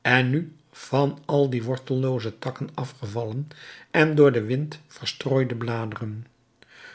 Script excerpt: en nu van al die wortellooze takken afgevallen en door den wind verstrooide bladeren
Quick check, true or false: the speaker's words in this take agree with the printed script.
true